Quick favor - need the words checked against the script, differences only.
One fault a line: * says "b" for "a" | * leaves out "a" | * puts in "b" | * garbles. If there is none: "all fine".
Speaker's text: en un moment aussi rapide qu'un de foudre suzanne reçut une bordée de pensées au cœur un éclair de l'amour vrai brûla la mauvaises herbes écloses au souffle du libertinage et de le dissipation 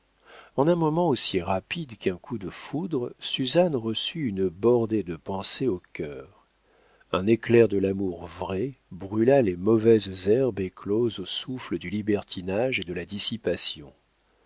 * puts in "coup"
* says "les" for "la"
* says "la" for "le"